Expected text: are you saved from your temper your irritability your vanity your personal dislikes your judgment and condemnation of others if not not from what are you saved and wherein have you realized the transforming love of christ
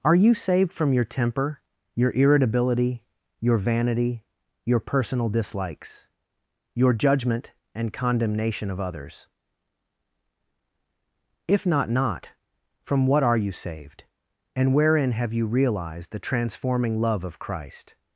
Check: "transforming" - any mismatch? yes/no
no